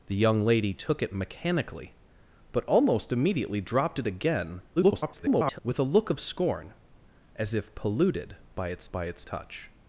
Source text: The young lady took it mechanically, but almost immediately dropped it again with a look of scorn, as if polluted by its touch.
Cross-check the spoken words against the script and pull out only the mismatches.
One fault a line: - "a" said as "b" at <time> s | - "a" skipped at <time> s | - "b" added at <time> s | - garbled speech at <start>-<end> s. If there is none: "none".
- garbled speech at 4.8-5.6 s
- "by its" added at 8.9 s